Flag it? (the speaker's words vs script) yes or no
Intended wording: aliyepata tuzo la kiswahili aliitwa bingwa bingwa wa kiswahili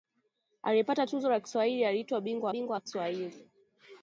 no